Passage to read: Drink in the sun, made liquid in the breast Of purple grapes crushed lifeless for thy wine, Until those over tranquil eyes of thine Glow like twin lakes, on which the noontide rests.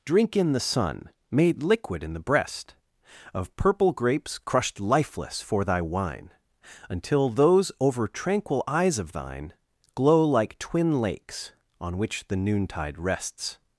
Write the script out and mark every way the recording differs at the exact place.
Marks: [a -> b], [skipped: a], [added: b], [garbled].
Drink in the sun, made liquid in the breast Of purple grapes crushed lifeless for thy wine, Until those over tranquil eyes of thine Glow like twin lakes, on which the noontide rests.